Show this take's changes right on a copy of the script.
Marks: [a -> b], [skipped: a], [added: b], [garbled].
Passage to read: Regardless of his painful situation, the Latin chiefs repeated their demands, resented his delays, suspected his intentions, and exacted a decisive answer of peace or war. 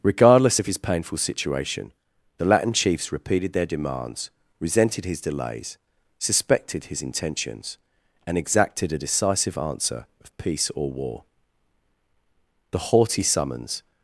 Regardless of his painful situation, the Latin chiefs repeated their demands, resented his delays, suspected his intentions, and exacted a decisive answer of peace or war. [added: The haughty summons]